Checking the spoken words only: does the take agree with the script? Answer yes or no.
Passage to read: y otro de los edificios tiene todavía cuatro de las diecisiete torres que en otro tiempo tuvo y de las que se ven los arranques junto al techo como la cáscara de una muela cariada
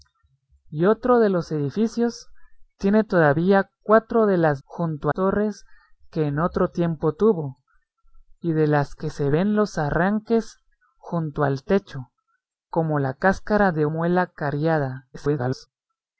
no